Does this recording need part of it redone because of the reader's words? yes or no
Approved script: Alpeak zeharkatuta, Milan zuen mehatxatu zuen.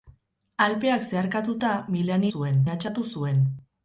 no